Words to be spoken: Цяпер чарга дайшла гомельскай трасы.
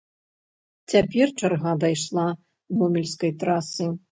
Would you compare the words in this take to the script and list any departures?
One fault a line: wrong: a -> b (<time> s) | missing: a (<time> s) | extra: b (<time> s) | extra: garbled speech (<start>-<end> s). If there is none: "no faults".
no faults